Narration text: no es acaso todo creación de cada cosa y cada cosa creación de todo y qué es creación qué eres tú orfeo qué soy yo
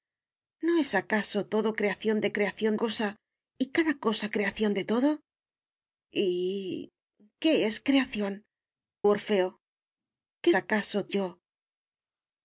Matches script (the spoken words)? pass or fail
fail